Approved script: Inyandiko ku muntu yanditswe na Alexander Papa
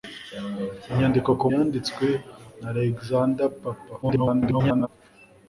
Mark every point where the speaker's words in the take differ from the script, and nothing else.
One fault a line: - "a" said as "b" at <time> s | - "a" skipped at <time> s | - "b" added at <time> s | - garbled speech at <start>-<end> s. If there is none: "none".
- "muntu" skipped at 1.5 s
- garbled speech at 4.0-4.9 s